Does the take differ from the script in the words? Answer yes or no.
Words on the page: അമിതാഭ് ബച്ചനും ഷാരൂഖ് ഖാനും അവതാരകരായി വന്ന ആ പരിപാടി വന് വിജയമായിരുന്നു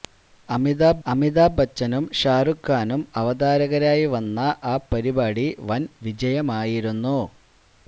yes